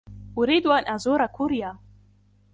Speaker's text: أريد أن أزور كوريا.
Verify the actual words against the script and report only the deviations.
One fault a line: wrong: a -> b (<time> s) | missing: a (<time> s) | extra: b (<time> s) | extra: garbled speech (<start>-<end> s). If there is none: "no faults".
no faults